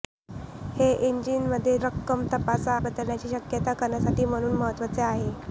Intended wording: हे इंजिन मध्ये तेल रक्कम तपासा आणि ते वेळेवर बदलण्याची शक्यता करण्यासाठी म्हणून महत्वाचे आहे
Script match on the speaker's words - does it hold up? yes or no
no